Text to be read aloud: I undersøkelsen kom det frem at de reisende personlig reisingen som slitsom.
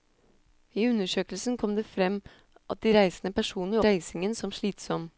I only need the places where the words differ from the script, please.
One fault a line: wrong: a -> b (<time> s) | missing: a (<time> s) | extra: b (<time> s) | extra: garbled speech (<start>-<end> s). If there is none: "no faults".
no faults